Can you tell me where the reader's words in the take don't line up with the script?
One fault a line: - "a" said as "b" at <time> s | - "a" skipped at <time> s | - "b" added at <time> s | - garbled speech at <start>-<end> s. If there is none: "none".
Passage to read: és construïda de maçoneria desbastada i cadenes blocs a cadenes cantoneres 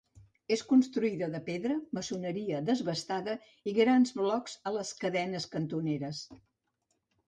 - "pedra" added at 1.5 s
- "cadenes" said as "grans" at 3.8 s
- "les" added at 4.8 s